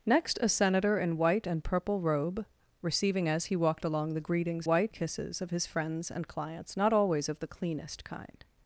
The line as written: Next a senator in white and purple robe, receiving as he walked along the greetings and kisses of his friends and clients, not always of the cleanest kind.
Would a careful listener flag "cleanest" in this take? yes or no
no